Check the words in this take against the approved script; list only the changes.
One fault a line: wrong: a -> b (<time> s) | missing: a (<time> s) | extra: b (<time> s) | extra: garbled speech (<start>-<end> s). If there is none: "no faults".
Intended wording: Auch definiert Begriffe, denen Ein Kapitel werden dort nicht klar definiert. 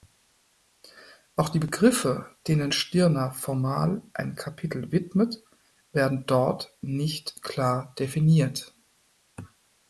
wrong: definiert -> die (1.5 s)
extra: Stirner formal (2.7 s)
extra: widmet (4.9 s)